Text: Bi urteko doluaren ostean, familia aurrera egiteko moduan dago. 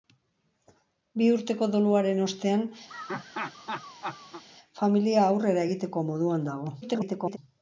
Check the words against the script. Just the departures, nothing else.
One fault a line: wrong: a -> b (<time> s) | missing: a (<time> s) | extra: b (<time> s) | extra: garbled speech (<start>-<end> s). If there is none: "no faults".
extra: garbled speech (6.8-7.4 s)